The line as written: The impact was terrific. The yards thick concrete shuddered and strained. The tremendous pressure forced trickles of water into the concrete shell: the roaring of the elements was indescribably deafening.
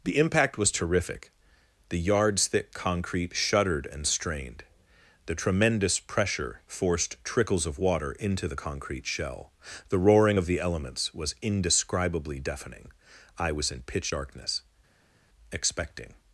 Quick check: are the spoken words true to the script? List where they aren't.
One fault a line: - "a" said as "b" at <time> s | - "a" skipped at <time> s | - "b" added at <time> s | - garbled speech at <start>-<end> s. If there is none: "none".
- "I was in pitch darkness expecting" added at 13.4 s